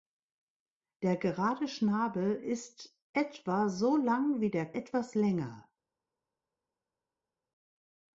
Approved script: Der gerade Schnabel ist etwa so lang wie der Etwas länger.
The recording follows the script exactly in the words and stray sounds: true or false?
true